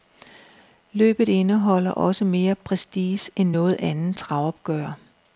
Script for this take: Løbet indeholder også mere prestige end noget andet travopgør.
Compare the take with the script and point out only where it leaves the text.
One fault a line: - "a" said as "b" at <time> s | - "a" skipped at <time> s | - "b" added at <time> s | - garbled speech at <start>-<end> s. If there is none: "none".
none